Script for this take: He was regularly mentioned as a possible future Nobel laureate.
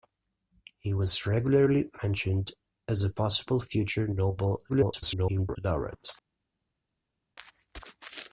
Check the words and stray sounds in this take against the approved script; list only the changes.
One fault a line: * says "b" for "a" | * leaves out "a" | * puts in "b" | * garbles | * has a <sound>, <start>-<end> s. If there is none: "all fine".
* garbles